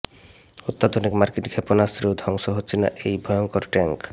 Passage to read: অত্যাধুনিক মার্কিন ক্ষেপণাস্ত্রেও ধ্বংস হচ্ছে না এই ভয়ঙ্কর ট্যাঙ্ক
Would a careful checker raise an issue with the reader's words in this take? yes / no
no